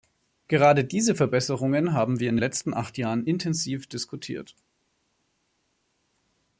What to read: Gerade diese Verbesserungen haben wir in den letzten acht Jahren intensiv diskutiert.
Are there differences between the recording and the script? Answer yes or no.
yes